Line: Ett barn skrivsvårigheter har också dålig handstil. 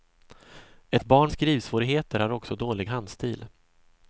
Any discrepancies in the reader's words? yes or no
no